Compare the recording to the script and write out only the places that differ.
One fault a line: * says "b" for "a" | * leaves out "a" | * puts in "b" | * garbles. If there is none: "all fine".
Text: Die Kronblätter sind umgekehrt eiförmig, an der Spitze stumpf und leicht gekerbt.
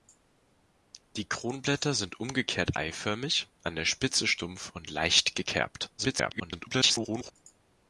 * garbles